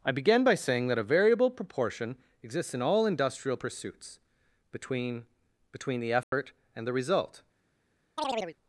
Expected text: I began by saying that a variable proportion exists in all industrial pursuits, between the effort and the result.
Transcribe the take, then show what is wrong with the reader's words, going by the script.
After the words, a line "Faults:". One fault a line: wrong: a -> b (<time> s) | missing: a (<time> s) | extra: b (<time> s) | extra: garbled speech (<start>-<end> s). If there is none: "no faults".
I began by saying that a variable proportion exists in all industrial pursuits, between between the effort and the result.
Faults:
extra: between (5.7 s)